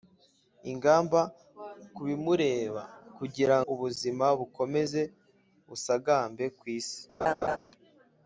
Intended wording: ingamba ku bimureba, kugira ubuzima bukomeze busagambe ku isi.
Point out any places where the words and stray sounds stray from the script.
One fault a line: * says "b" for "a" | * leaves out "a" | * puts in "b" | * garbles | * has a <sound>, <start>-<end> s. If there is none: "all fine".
* has a laugh, 7.2-7.6 s